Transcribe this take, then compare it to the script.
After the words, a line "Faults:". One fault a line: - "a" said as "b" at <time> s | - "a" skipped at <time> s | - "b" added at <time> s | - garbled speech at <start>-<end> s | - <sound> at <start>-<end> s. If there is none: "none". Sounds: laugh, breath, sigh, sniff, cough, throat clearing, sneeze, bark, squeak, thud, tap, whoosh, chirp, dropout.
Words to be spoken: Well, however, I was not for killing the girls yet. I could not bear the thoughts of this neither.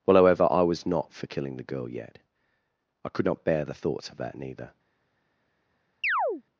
Well, however, I was not for killing the girl yet. I could not bear the thoughts of that neither.
Faults:
- "girls" said as "girl" at 1.6 s
- "this" said as "that" at 4.2 s
- chirp at 6.0-6.4 s